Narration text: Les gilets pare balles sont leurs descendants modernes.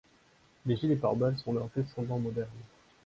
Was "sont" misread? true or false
false